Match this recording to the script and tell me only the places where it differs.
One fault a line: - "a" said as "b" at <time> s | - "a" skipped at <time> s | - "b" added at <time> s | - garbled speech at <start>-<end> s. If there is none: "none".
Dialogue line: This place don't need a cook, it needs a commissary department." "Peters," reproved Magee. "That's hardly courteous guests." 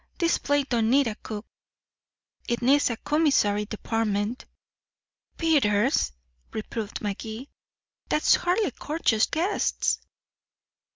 none